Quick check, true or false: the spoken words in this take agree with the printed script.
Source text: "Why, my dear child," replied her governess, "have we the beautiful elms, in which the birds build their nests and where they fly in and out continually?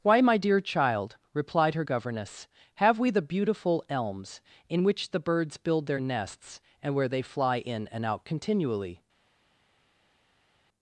true